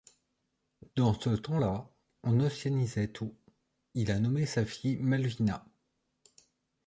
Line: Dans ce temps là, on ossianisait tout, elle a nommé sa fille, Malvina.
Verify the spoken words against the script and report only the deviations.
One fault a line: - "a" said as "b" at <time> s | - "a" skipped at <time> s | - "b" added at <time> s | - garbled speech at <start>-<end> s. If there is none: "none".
- "elle" said as "il" at 3.9 s